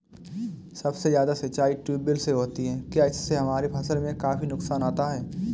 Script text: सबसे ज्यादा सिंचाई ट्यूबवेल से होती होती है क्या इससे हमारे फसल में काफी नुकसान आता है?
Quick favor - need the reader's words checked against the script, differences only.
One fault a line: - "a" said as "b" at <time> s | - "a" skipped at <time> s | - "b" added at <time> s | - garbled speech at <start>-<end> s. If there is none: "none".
- "होती" skipped at 2.6 s